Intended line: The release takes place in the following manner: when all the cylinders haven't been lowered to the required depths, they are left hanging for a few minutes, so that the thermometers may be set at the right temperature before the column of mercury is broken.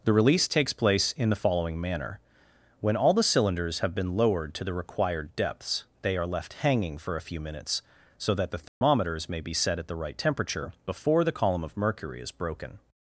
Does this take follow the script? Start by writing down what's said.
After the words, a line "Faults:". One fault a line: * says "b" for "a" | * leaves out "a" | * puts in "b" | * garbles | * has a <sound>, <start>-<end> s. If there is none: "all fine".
The release takes place in the following manner: when all the cylinders have been lowered to the required depths, they are left hanging for a few minutes, so that the thermometers may be set at the right temperature before the column of mercury is broken.
Faults:
* says "have" for "haven't"
* has a dropout, 8.7-8.8 s